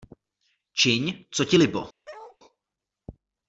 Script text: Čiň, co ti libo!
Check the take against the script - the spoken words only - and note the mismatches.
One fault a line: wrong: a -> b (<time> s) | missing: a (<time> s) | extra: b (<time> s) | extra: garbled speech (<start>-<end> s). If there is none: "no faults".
no faults